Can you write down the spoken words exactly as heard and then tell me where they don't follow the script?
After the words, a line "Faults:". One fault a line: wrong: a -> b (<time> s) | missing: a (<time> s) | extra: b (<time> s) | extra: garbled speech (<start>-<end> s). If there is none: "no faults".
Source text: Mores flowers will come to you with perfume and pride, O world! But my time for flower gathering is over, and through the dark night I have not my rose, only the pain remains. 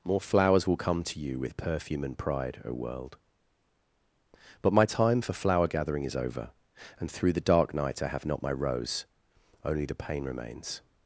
More flowers will come to you with perfume and pride, O world! But my time for flower gathering is over, and through the dark night I have not my rose, only the pain remains.
Faults:
wrong: Mores -> More (0.0 s)